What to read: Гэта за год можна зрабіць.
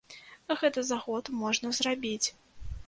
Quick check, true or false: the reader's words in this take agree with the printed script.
true